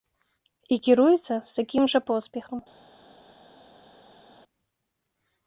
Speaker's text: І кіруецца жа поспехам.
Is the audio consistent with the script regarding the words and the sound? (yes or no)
no